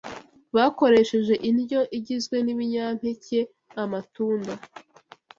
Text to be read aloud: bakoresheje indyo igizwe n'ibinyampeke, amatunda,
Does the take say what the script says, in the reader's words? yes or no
yes